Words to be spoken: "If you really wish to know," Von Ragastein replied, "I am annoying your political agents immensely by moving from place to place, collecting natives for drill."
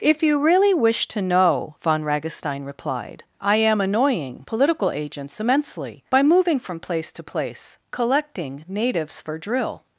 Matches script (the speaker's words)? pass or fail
fail